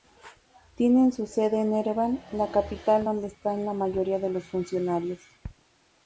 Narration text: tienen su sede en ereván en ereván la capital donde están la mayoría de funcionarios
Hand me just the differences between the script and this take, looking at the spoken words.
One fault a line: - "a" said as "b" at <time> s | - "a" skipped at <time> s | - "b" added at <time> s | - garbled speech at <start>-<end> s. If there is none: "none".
- "en ereván" skipped at 2.2 s
- "los" added at 4.3 s